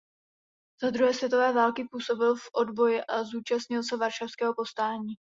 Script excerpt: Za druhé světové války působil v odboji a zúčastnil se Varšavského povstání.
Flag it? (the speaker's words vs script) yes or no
no